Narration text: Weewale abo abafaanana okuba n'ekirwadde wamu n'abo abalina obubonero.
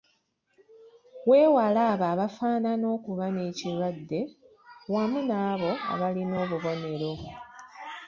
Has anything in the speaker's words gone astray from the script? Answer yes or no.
no